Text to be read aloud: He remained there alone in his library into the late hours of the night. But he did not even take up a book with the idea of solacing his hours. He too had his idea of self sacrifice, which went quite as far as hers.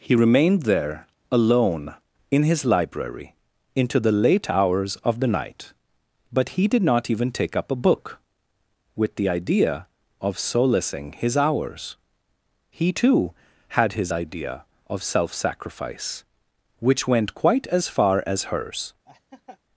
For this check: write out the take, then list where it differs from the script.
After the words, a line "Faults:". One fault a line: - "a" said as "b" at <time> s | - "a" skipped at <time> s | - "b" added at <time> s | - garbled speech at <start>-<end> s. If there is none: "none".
He remained there alone in his library into the late hours of the night. But he did not even take up a book with the idea of solacing his hours. He too had his idea of self sacrifice, which went quite as far as hers.
Faults:
none